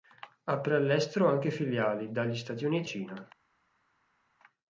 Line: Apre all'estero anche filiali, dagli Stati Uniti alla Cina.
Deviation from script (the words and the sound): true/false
true